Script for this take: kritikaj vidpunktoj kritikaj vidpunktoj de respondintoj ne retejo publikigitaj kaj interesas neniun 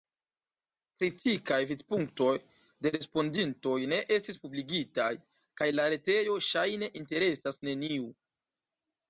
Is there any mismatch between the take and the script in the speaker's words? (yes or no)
yes